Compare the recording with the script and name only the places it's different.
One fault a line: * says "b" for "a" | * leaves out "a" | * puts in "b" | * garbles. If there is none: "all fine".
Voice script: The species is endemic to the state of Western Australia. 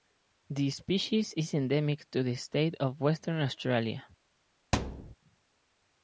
all fine